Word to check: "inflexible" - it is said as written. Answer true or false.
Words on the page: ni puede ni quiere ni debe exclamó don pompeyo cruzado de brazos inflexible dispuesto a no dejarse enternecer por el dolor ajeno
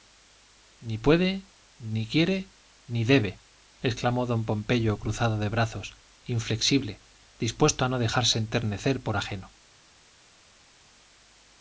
true